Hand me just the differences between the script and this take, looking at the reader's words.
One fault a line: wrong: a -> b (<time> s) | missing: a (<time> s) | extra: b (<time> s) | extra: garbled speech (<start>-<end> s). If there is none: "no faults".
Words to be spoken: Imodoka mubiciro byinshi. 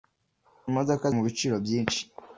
no faults